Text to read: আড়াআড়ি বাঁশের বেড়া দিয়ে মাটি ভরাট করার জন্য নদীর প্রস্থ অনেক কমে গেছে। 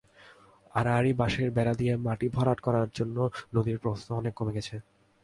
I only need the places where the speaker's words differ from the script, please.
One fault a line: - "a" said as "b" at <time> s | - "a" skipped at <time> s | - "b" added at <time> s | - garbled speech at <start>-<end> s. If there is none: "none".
none